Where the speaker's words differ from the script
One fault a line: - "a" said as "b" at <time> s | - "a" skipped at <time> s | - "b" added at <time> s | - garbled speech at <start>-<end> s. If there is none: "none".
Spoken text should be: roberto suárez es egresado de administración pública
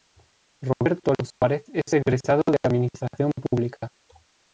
none